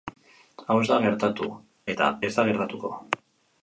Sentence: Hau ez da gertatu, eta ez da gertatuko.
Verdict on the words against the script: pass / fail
pass